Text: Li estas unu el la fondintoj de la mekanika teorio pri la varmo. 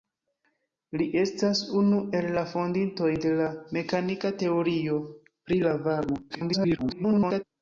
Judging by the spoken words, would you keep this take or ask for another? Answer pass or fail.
fail